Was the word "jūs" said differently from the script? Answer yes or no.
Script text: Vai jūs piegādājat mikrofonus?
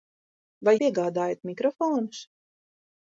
yes